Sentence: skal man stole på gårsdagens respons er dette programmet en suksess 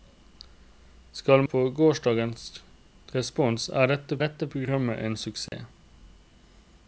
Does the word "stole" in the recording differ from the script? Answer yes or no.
yes